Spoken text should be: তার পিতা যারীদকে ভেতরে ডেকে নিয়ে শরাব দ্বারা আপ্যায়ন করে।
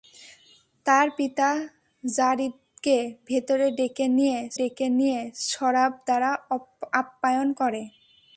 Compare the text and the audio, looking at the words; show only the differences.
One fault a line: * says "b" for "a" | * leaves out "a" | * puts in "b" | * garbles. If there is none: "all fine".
* puts in "ডেকে নিয়ে"